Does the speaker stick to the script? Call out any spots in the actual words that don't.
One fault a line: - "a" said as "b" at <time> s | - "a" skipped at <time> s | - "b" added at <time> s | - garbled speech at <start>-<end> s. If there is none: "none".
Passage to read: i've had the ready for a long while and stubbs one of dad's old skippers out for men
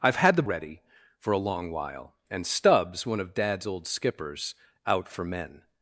none